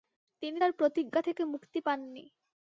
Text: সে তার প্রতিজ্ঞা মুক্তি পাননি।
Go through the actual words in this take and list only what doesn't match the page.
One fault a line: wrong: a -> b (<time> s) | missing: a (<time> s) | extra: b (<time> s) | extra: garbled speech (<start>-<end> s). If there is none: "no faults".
wrong: সে -> তিনি (0.4 s)
extra: থেকে (1.2 s)